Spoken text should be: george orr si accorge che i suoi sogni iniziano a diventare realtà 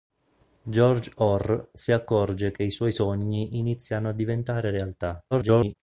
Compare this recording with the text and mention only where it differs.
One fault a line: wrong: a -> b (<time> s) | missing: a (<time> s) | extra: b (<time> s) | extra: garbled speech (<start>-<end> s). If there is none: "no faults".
extra: garbled speech (5.3-5.7 s)